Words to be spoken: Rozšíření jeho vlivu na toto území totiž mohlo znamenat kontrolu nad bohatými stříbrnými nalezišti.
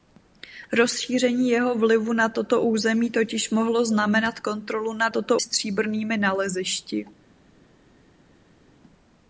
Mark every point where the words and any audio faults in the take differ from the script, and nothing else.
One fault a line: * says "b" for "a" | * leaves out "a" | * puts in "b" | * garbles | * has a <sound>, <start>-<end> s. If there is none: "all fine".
* says "toto" for "bohatými"